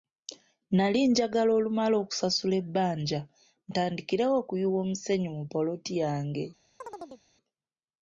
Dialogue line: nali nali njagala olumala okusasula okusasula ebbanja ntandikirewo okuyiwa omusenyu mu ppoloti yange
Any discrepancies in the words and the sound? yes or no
yes